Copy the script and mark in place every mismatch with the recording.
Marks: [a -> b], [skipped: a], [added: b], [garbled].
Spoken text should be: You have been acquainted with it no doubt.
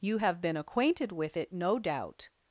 You have been acquainted with it no doubt.